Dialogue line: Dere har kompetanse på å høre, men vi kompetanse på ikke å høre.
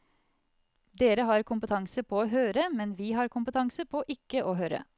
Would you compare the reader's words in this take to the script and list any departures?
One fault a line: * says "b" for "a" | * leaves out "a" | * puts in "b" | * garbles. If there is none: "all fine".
* puts in "har"